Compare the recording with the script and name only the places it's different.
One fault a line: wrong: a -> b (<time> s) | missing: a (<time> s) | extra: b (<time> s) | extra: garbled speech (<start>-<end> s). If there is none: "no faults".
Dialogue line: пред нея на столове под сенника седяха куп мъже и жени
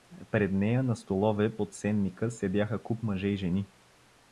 no faults